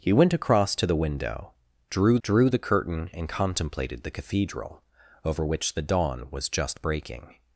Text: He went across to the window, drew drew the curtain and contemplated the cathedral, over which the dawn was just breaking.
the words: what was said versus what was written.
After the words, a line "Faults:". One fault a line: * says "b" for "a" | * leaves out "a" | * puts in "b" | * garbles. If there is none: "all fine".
He went across to the window, drew drew the curtain and contemplated the cathedral, over which the dawn was just breaking.
Faults:
all fine